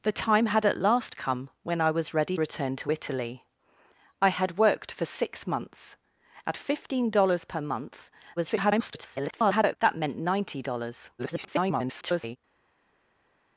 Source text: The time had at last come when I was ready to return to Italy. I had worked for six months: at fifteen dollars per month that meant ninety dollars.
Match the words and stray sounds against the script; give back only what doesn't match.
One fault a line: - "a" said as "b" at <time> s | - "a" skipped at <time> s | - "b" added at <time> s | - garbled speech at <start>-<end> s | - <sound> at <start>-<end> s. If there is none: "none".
- "to" skipped at 2.4 s
- garbled speech at 8.4-9.8 s
- garbled speech at 11.2-12.4 s